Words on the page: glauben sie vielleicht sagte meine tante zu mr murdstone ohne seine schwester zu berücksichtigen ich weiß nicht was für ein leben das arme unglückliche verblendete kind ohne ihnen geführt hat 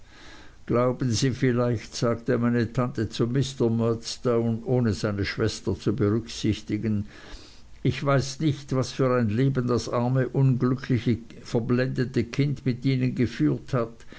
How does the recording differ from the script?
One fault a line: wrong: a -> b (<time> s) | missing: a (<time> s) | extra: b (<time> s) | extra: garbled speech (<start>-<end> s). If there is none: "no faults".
wrong: ohne -> mit (12.7 s)